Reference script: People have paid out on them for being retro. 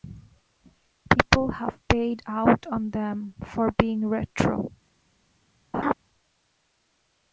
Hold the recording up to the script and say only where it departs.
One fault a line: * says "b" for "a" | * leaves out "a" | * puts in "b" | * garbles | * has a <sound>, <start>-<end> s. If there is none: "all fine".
* has a laugh, 5.7-5.9 s